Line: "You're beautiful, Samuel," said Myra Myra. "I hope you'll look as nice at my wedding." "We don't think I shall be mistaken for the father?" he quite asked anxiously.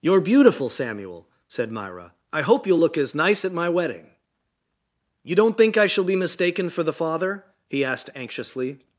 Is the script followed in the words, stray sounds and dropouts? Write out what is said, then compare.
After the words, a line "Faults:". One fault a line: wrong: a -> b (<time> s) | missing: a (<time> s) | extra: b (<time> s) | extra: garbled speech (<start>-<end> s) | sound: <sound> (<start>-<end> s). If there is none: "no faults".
"You're beautiful, Samuel," said Myra. "I hope you'll look as nice at my wedding." "You don't think I shall be mistaken for the father?" he asked anxiously.
Faults:
missing: Myra (2.1 s)
wrong: We -> You (5.2 s)
missing: quite (7.8 s)